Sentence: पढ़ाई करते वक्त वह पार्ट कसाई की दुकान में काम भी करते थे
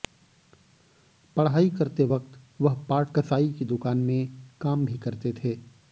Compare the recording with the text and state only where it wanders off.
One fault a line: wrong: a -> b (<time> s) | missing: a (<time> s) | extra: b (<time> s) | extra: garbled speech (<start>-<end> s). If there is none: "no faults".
no faults